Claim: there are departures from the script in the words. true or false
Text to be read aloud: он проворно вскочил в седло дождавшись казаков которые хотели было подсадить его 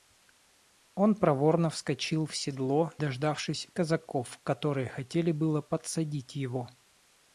false